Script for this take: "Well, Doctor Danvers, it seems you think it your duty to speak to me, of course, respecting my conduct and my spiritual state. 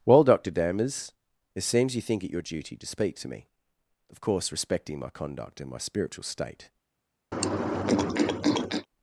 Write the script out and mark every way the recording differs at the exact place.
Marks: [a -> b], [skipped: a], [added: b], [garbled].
"Well, Doctor Danvers, it seems you think it your duty to speak to me, of course, respecting my conduct and my spiritual state.